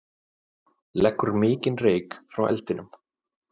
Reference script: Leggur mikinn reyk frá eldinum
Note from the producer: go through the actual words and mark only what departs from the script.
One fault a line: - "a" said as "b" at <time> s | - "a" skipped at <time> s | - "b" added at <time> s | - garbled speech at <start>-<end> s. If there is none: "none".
none